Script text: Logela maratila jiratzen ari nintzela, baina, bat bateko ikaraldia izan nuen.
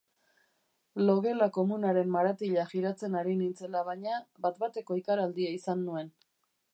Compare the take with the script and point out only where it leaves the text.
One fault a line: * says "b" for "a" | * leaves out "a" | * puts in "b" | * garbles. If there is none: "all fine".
* puts in "komunaren"